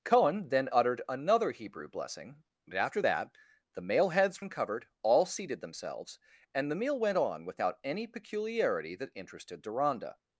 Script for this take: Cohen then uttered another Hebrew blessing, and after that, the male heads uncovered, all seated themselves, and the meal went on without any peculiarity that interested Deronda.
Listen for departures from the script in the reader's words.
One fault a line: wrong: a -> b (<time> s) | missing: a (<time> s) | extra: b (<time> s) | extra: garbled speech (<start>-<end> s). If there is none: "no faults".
no faults